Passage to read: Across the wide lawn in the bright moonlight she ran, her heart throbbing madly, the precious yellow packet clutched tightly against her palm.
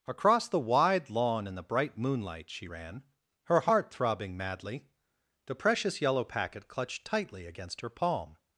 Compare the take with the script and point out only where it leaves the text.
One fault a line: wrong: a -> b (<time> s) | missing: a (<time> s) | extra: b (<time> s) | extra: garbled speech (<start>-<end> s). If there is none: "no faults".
no faults